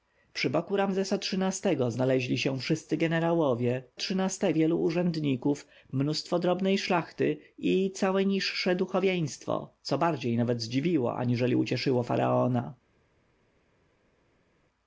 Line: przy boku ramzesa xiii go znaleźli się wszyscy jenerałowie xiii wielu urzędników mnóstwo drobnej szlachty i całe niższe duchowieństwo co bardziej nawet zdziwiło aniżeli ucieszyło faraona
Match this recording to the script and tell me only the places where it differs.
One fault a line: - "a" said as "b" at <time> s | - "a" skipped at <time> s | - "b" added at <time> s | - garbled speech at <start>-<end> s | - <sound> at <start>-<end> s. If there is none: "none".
none